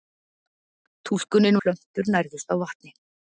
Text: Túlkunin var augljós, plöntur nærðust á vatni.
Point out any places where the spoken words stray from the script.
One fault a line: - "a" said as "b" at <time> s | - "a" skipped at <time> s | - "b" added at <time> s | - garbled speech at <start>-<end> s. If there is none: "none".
- "var augljós" skipped at 1.6 s